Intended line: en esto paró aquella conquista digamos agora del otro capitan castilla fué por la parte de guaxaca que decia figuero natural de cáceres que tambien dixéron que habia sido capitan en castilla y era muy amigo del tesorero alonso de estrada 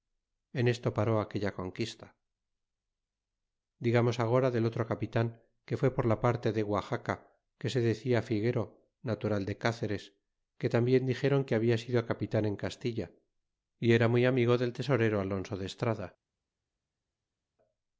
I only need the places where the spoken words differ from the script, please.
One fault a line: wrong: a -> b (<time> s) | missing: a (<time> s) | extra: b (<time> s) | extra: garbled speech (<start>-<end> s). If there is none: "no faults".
wrong: castilla -> que (5.7 s)
extra: se (7.7 s)